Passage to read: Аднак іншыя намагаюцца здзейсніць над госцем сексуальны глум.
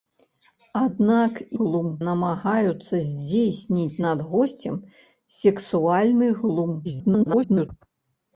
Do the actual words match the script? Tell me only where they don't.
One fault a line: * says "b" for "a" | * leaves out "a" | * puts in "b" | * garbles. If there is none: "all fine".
* says "глум" for "іншыя"
* garbles